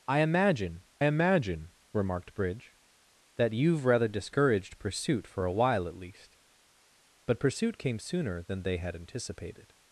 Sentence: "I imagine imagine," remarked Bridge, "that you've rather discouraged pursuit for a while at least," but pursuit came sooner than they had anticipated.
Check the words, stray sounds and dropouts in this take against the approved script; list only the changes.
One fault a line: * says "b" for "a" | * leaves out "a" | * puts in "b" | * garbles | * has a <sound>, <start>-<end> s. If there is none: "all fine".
all fine